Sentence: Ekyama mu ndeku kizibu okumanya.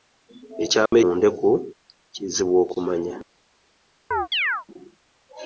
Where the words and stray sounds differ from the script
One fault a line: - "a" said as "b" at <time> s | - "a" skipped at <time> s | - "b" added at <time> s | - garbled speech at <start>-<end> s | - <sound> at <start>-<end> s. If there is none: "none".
- dropout at 0.9-0.9 s
- chirp at 4.1-4.7 s